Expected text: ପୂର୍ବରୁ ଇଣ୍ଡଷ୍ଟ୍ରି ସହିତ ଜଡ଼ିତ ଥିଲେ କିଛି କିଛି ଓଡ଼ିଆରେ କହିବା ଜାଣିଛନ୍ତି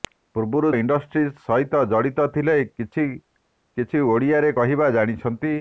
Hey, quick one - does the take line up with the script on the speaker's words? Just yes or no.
yes